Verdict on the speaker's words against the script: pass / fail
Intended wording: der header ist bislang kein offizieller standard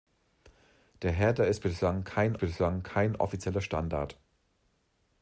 fail